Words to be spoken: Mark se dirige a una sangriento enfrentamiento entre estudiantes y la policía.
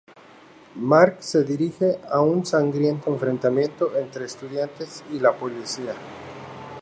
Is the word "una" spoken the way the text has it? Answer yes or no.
no